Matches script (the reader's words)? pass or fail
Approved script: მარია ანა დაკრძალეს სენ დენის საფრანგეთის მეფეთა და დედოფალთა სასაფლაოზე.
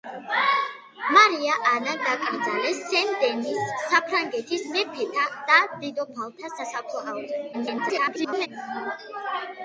fail